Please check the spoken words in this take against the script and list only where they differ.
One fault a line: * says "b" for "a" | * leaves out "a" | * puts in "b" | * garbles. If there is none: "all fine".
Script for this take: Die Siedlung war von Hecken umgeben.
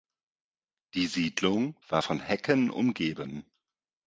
all fine